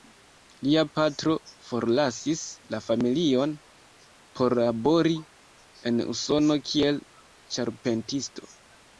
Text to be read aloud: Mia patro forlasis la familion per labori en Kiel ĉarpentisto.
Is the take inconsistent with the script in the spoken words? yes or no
yes